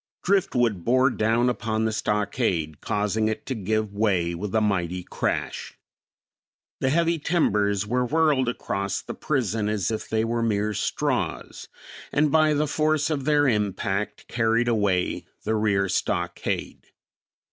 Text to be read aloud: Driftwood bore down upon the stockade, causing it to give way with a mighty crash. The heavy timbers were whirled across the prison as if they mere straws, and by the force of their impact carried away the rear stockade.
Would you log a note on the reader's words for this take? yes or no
yes